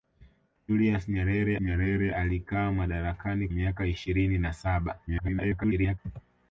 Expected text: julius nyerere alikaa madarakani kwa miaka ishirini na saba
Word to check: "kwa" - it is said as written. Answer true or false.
false